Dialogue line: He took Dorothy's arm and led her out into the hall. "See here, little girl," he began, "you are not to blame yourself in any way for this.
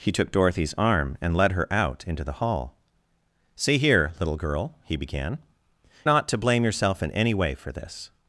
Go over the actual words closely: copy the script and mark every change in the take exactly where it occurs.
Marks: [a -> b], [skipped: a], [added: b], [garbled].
He took Dorothy's arm and led her out into the hall. "See here, little girl," he began, [skipped: "you are] not to blame yourself in any way for this.